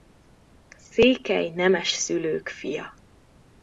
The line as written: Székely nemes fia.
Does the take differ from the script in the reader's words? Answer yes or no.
yes